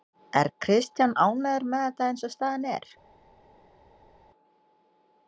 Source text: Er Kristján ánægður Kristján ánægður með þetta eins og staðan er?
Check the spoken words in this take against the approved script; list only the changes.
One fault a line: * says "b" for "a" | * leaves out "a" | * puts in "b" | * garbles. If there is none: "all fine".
* leaves out "Kristján ánægður"